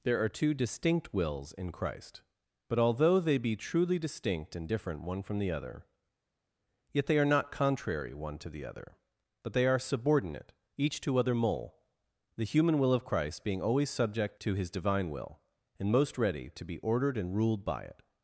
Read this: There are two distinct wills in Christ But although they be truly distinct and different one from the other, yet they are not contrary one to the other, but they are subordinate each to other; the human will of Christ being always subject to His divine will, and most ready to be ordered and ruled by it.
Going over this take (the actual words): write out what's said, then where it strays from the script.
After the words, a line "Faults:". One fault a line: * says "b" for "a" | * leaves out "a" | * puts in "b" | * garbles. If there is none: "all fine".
There are two distinct wills in Christ But although they be truly distinct and different one from the other, yet they are not contrary one to the other, but they are subordinate each to other; mole the human will of Christ being always subject to His divine will, and most ready to be ordered and ruled by it.
Faults:
* puts in "mole"